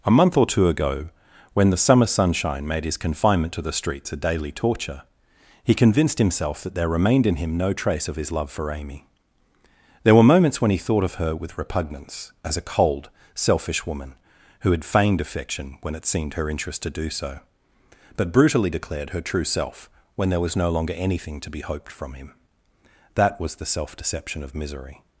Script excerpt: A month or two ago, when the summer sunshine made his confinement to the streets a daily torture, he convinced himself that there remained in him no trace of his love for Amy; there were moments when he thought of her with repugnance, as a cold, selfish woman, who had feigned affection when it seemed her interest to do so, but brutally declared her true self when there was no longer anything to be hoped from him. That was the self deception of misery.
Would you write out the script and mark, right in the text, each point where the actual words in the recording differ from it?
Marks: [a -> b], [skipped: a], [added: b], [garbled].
A month or two ago, when the summer sunshine made his confinement to the streets a daily torture, he convinced himself that there remained in him no trace of his love for Amy; there were moments when he thought of her with repugnance, as a cold, selfish woman, who had feigned affection when it seemed her interest to do so, but brutally declared her true self when there was no longer anything to be hoped from him. That was the self deception of misery.